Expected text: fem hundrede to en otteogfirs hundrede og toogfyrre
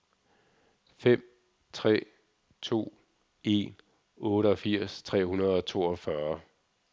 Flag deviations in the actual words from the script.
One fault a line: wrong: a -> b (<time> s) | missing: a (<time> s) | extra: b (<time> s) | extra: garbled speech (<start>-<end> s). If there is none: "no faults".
wrong: hundrede -> tre (1.7 s)
extra: tre (5.0 s)